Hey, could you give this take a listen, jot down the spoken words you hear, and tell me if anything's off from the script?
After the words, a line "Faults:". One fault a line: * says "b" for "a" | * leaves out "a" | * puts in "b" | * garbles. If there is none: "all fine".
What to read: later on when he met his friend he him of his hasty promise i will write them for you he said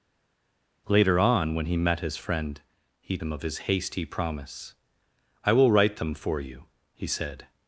later on when he met his friend he him of his hasty promise i will write them for you he said
Faults:
all fine